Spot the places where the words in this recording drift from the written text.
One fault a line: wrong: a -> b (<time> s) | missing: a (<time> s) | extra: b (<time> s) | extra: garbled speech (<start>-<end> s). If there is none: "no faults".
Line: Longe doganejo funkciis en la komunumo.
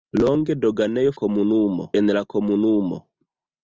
wrong: funkciis -> komunumo (1.2 s)